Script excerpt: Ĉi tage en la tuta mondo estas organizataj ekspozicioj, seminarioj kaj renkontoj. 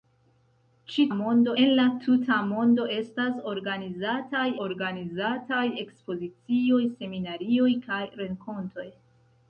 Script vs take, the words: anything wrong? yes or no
yes